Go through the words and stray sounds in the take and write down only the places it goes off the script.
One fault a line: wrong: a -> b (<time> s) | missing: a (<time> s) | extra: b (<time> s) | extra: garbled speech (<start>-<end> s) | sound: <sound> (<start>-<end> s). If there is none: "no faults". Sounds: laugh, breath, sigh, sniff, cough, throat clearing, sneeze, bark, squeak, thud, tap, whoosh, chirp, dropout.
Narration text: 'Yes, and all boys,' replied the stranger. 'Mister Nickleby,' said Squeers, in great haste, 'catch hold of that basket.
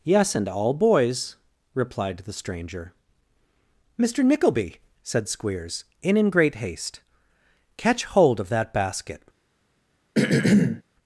extra: in (6.2 s)
sound: throat clearing (10.2-10.8 s)